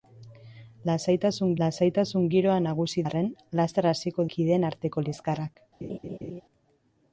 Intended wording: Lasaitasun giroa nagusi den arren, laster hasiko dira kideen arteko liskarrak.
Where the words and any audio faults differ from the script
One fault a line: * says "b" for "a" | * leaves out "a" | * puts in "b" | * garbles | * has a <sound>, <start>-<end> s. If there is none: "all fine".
* puts in "lasaitasun"
* leaves out "den"
* leaves out "dira"
* has a laugh, 5.8-6.4 s